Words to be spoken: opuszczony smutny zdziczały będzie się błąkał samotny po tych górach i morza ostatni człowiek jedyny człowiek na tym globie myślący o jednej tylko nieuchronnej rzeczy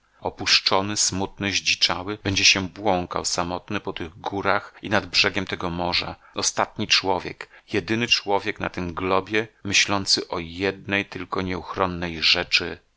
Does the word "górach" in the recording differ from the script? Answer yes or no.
no